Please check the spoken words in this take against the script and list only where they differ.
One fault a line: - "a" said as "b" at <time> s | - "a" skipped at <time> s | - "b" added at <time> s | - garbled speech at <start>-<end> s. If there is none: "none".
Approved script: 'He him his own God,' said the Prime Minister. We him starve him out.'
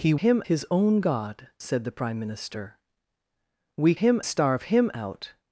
none